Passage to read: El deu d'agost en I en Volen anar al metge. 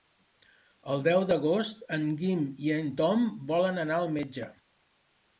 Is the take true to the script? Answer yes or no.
no